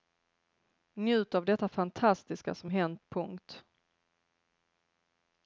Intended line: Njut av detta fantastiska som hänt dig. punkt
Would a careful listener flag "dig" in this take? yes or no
yes